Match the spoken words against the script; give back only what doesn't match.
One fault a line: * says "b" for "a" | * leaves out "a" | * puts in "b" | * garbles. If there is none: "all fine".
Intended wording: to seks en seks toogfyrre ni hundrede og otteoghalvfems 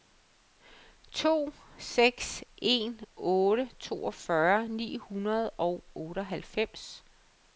* says "otte" for "seks"